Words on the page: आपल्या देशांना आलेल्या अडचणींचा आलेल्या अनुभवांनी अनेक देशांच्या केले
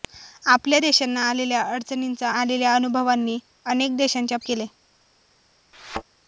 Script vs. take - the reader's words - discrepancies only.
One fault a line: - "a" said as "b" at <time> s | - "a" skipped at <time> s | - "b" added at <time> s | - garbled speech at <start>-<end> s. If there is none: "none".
none